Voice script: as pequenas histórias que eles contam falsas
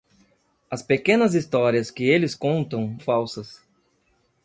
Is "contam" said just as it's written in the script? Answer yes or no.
yes